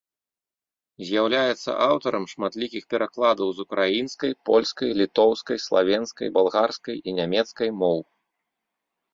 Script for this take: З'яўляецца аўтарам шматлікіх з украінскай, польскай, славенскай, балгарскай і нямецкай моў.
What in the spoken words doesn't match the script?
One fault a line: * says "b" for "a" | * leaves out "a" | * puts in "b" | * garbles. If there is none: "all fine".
* puts in "перакладаў"
* puts in "літоўскай"